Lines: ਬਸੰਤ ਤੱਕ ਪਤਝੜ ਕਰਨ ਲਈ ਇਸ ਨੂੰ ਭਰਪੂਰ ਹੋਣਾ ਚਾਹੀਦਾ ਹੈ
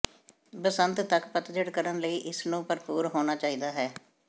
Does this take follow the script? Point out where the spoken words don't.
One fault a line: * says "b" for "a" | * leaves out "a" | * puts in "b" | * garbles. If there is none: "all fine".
all fine